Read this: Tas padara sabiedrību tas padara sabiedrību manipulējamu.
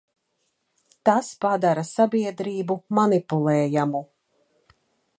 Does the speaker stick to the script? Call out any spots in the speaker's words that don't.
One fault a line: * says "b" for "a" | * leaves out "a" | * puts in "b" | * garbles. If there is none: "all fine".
* leaves out "tas padara sabiedrību"